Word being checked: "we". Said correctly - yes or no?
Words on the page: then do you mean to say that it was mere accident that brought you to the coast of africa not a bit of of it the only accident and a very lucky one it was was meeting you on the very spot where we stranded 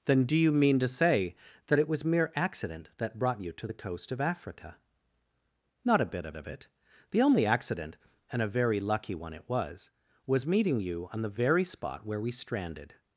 yes